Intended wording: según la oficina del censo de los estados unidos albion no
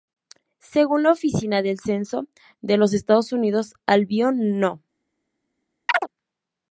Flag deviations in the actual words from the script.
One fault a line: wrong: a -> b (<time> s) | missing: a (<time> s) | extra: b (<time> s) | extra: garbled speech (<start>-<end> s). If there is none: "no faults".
no faults